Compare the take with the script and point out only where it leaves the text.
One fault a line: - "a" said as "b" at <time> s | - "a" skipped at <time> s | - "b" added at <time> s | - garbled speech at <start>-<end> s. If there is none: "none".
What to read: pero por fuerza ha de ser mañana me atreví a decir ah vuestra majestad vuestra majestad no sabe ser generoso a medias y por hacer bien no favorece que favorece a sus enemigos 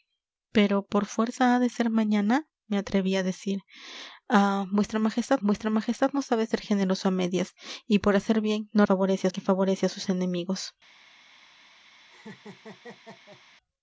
none